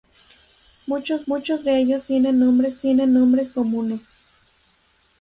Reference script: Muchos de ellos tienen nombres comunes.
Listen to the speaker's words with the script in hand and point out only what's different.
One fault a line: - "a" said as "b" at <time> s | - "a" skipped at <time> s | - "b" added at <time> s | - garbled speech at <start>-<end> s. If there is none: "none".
- "muchos" added at 1.3 s
- "tienen nombres" added at 2.8 s